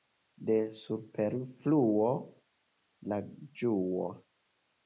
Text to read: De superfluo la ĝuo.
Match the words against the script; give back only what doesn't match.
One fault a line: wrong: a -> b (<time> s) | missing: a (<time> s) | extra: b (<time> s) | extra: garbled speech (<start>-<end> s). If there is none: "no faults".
no faults